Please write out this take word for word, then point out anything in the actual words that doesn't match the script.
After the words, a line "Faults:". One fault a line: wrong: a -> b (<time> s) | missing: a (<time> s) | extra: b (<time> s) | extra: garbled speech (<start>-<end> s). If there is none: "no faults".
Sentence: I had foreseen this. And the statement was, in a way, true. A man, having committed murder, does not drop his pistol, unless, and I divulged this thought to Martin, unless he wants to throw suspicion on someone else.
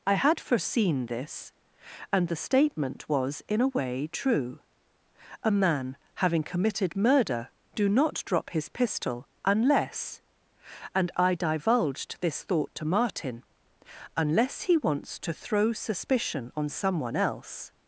I had foreseen this. And the statement was, in a way, true. A man, having committed murder, do not drop his pistol, unless, and I divulged this thought to Martin, unless he wants to throw suspicion on someone else.
Faults:
wrong: does -> do (7.8 s)